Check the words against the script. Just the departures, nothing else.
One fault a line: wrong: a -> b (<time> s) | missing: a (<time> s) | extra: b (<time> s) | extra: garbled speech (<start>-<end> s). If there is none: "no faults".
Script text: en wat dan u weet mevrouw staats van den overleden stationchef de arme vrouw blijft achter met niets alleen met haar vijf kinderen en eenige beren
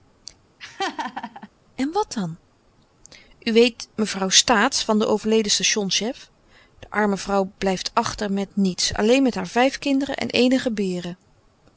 no faults